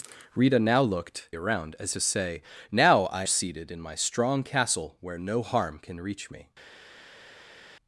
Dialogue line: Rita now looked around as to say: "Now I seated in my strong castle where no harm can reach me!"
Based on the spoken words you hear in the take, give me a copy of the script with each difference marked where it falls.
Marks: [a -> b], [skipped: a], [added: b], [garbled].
Rita now looked around as to say: "Now I seated in my strong castle where no harm can reach me!"